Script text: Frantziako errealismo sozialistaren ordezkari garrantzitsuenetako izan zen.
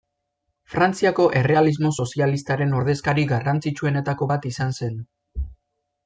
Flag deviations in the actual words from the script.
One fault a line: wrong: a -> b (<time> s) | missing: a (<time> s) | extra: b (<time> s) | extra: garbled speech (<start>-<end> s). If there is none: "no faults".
extra: bat (4.3 s)